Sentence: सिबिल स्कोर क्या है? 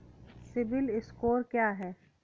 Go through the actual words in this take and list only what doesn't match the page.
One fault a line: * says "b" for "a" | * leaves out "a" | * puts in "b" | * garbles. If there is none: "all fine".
all fine